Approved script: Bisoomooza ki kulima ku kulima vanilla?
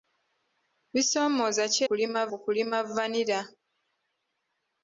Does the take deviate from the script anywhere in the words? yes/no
no